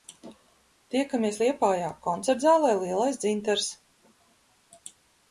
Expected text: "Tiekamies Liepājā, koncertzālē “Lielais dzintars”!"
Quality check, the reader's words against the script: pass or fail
pass